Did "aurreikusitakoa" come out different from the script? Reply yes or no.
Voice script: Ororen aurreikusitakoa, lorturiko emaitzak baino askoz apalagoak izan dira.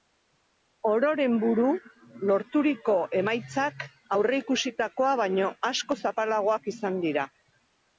yes